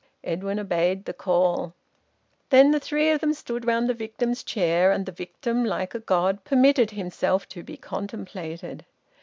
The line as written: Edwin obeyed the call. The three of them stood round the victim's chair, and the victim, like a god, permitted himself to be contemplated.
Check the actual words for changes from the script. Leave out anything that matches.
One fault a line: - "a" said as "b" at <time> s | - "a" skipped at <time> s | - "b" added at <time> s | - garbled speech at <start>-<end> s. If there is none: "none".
- "Then" added at 2.5 s